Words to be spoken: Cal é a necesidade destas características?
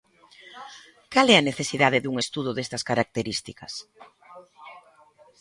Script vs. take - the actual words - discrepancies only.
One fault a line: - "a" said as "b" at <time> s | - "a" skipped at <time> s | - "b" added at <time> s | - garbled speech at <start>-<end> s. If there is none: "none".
- "dun estudo" added at 2.0 s